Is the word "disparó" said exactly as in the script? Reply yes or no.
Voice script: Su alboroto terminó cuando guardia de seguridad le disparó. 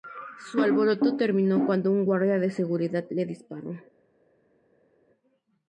yes